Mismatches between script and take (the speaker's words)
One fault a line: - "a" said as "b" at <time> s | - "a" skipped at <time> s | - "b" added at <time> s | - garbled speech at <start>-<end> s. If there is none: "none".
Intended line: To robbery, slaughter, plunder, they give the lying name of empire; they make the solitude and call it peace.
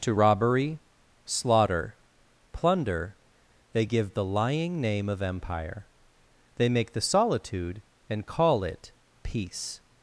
none